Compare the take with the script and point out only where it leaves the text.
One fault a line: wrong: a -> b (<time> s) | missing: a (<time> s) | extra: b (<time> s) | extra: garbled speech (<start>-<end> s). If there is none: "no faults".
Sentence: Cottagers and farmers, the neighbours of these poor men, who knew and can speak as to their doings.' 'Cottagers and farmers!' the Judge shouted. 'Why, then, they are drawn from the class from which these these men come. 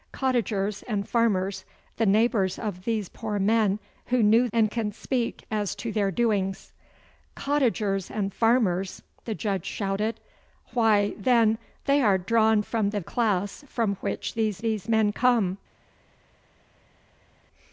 no faults